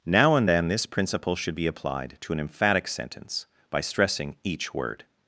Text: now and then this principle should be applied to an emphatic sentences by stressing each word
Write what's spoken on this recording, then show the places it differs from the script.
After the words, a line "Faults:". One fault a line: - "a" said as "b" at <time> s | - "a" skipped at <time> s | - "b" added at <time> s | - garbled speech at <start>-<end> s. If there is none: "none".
now and then this principle should be applied to an emphatic sentence by stressing each word
Faults:
- "sentences" said as "sentence" at 2.9 s